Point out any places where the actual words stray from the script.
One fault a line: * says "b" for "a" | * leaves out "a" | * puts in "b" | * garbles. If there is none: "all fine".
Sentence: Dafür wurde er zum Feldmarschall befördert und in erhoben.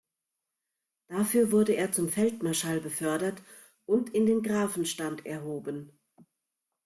* puts in "den Grafenstand"